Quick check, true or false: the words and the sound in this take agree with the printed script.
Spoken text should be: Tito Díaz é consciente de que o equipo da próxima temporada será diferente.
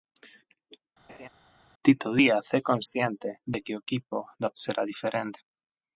false